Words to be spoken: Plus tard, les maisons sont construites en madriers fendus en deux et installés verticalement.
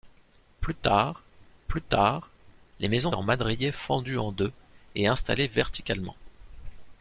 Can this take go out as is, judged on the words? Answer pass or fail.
fail